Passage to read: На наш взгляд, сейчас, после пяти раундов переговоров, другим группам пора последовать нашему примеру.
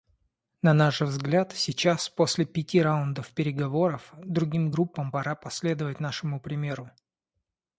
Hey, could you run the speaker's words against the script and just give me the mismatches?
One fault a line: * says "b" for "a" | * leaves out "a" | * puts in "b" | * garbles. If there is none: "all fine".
all fine